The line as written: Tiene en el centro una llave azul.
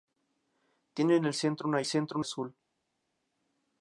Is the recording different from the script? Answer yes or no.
yes